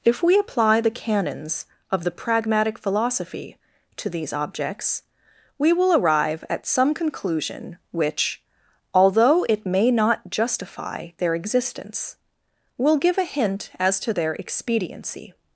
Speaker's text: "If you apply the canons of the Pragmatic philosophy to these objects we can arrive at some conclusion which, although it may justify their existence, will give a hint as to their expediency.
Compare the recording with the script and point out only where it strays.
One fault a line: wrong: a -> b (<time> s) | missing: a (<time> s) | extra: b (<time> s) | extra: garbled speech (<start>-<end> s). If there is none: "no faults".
wrong: you -> we (0.2 s)
wrong: can -> will (5.7 s)
extra: not (9.9 s)